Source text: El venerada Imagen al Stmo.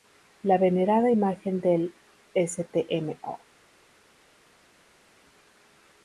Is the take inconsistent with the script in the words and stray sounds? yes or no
yes